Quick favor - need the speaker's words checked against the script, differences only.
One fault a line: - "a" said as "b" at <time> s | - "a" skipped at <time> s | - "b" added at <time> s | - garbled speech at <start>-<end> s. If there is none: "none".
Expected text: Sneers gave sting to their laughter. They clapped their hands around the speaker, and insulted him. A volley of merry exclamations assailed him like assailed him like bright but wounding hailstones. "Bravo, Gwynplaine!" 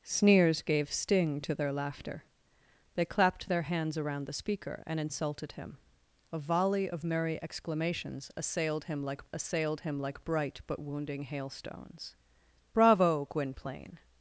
none